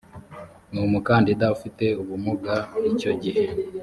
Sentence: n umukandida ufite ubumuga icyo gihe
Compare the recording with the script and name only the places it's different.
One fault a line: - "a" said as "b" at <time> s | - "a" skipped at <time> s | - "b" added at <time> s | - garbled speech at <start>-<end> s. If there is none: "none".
none